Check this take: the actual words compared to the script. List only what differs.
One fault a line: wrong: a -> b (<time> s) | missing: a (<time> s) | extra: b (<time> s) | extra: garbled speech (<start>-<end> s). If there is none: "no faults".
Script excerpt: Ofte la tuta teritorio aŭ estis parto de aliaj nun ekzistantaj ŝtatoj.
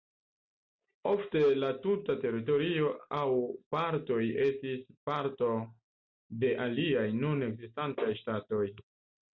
extra: partoj (3.8 s)